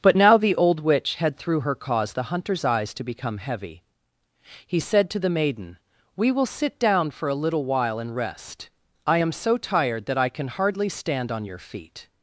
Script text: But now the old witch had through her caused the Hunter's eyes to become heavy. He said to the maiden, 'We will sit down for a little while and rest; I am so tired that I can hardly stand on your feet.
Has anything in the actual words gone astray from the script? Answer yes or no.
no